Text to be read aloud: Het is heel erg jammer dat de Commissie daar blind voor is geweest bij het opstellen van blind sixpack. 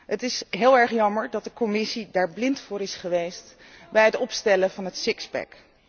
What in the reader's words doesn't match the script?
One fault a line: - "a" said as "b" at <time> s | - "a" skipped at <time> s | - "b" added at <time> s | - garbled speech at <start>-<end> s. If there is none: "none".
- "blind" said as "het" at 4.8 s